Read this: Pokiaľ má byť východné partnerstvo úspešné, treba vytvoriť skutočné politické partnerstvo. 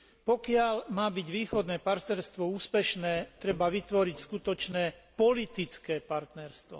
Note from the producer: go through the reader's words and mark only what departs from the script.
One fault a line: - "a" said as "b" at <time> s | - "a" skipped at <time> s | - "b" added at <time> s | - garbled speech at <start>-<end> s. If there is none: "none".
none